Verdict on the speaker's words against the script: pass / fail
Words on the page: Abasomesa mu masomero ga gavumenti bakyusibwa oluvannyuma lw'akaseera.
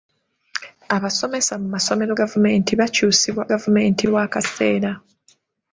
fail